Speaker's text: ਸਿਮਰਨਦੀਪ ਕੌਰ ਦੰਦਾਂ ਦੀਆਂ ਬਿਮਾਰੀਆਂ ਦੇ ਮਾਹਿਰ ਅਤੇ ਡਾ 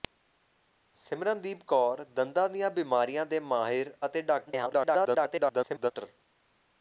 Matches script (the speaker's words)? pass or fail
fail